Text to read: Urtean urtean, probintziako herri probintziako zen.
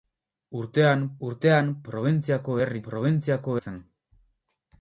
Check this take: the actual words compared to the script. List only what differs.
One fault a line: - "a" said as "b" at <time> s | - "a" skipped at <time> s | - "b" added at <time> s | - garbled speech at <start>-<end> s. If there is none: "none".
none